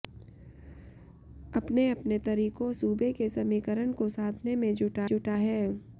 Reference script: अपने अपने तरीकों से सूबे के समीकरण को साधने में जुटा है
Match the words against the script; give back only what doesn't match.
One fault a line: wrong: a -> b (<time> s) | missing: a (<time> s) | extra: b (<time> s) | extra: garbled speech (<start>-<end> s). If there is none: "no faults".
missing: से (2.7 s)
extra: जुटा (5.0 s)